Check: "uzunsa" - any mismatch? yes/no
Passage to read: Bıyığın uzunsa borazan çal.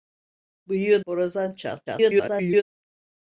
yes